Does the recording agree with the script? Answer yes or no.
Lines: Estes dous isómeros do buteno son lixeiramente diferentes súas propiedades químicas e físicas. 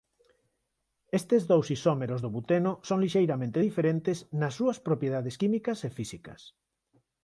no